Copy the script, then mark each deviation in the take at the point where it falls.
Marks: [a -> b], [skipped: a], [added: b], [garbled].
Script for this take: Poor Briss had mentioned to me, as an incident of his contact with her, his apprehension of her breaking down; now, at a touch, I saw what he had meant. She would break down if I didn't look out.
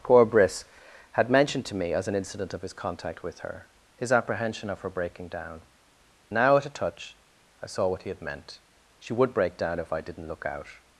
Poor Briss had mentioned to me, as an incident of his contact with her, his apprehension of her breaking down; now, at a touch, I saw what he had meant. She would break down if I didn't look out.